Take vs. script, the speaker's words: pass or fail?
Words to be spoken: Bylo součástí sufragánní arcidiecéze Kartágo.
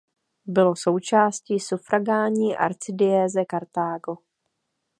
pass